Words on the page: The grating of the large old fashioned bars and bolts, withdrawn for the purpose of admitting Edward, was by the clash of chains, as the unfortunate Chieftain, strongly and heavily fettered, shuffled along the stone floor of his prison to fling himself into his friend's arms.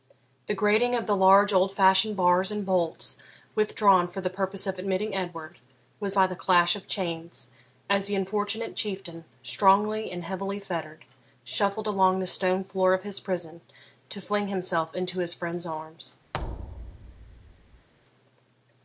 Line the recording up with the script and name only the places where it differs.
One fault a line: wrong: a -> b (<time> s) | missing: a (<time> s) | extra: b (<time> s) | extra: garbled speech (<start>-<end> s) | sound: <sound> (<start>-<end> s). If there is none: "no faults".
sound: thud (16.3-17.9 s)